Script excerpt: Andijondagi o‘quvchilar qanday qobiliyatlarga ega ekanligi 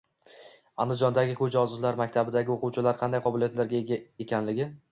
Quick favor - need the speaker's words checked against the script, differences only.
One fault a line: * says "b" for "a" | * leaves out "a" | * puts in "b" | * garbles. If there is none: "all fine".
* puts in "ko‘zi ojizlar maktabidagi"